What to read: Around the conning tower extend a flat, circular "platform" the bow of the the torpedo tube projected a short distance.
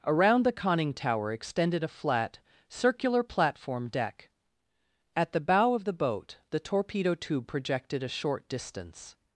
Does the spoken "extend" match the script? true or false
false